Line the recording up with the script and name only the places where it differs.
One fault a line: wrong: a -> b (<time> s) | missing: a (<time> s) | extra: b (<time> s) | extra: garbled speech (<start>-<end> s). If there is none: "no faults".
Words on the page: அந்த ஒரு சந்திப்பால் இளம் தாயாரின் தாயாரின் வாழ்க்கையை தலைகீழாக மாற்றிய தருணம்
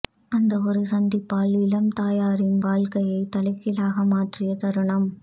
missing: தாயாரின் (2.6 s)